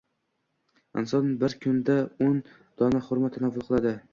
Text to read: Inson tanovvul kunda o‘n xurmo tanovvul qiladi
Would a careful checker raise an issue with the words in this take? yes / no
yes